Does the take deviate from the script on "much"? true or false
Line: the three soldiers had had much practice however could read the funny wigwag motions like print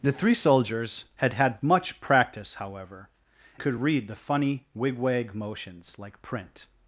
false